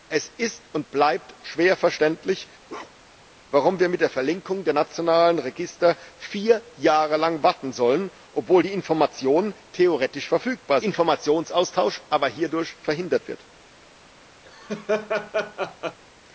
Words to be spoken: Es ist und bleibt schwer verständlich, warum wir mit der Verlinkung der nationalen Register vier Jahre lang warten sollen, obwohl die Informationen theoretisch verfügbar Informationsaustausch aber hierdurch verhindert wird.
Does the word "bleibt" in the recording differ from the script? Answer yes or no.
no